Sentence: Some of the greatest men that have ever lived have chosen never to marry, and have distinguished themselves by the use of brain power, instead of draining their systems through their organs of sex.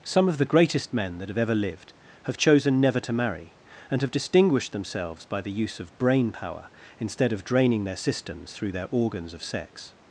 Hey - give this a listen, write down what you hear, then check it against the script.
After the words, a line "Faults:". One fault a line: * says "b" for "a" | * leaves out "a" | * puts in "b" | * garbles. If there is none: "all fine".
Some of the greatest men that have ever lived have chosen never to marry, and have distinguished themselves by the use of brain power, instead of draining their systems through their organs of sex.
Faults:
all fine